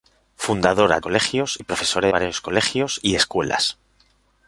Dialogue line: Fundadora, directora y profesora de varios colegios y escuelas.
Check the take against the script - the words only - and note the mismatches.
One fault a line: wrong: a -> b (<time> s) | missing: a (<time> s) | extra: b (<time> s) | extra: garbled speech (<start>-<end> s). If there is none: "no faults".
wrong: directora -> colegios (1.0 s)
missing: de (2.1 s)